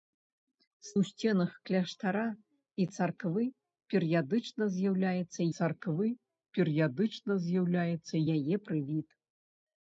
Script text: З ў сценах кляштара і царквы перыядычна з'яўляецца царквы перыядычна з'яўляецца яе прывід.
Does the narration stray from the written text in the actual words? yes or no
no